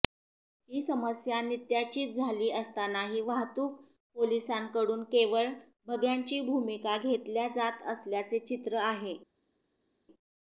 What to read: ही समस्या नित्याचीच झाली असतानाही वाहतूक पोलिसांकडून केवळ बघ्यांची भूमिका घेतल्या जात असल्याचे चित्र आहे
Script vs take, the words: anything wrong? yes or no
no